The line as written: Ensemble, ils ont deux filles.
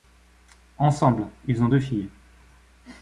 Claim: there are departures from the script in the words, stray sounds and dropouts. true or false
false